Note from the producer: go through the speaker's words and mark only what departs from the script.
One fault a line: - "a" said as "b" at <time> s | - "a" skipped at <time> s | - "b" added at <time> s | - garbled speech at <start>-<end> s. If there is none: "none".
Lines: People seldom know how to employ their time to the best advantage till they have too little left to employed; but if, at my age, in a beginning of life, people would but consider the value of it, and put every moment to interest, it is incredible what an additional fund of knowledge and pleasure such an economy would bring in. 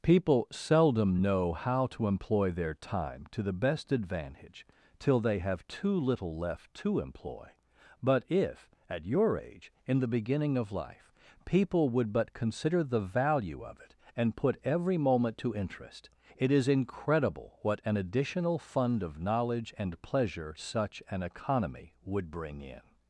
- "employed" said as "employ" at 7.0 s
- "my" said as "your" at 9.1 s
- "a" said as "the" at 10.0 s